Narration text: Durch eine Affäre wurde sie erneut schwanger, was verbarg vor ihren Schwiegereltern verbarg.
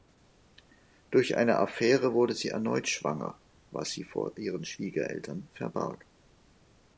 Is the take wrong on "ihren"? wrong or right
right